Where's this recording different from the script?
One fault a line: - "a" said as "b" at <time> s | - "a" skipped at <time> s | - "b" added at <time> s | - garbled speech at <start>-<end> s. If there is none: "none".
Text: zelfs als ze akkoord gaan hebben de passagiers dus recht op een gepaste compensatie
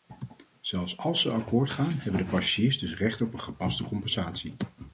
none